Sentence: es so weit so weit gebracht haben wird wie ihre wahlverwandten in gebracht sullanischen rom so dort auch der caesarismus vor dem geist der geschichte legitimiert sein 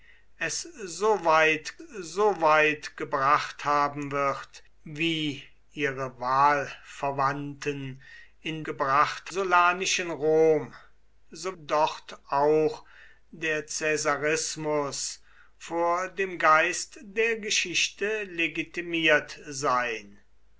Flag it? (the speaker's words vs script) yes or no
no